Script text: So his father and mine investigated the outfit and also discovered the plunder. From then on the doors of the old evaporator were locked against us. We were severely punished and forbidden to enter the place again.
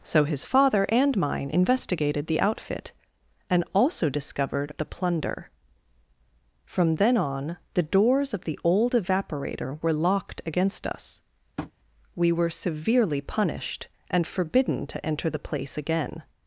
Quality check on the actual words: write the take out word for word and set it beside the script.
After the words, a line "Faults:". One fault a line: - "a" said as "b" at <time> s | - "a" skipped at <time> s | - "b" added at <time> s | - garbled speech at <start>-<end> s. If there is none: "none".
So his father and mine investigated the outfit and also discovered the plunder. From then on the doors of the old evaporator were locked against us. We were severely punished and forbidden to enter the place again.
Faults:
none